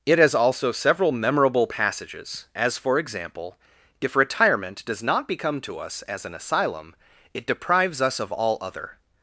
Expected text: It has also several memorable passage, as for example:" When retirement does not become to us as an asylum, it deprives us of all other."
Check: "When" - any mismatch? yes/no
yes